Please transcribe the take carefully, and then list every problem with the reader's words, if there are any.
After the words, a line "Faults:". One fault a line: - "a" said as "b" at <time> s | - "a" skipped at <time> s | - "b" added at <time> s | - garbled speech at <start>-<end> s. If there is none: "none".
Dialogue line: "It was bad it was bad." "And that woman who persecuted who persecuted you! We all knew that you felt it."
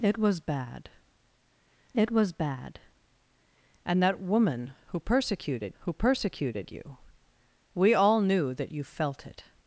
"It was bad it was bad." "And that woman who persecuted who persecuted you! We all knew that you felt it."
Faults:
none